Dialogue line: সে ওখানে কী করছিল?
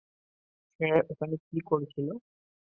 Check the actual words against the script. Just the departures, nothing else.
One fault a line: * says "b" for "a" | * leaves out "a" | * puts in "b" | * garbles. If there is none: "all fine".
all fine